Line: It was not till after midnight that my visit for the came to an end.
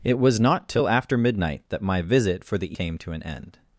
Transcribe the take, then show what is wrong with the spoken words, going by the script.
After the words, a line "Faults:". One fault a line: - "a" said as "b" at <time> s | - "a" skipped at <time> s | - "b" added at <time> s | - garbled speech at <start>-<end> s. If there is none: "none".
It was not till after midnight that my visit for the came to an end.
Faults:
none